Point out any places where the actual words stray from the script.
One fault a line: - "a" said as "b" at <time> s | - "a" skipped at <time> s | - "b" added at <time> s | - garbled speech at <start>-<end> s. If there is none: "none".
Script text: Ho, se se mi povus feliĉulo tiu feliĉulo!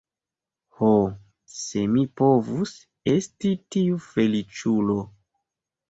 - "se" skipped at 1.8 s
- "feliĉulo" said as "esti" at 3.2 s